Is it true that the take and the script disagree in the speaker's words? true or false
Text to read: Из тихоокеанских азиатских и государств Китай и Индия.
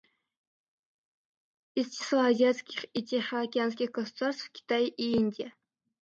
true